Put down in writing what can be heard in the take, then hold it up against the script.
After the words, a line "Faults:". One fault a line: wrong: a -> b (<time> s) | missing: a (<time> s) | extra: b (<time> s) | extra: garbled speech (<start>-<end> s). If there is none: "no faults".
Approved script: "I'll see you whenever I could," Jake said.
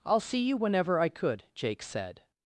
"I'll see you whenever I could," Jake said.
Faults:
no faults